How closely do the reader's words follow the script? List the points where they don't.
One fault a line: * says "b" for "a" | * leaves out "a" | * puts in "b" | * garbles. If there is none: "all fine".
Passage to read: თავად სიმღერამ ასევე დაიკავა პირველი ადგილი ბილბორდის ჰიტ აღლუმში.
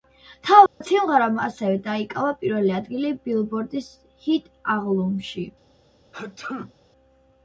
all fine